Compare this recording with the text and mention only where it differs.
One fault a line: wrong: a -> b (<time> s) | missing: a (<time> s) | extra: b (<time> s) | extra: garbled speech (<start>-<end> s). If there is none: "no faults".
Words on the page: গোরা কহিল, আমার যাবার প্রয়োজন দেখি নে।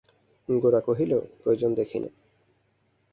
missing: আমার যাবার (1.1 s)